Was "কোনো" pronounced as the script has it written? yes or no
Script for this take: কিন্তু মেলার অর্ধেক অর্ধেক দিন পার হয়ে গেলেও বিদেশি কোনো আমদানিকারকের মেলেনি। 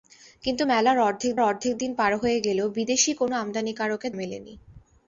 yes